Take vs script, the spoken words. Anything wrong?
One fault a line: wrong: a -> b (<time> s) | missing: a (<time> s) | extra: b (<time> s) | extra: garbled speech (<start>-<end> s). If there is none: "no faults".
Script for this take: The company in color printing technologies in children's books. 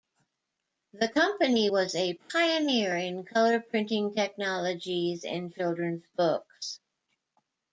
extra: was a pioneer (1.7 s)